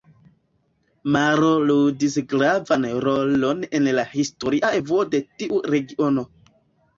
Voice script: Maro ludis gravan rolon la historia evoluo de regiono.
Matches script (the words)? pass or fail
fail